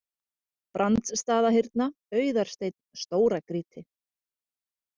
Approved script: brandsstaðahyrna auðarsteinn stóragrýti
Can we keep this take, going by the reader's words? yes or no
yes